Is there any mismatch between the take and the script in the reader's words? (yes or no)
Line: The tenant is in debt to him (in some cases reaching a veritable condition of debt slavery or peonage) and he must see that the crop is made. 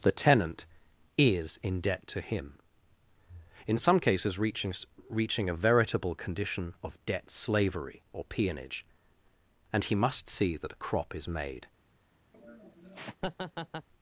yes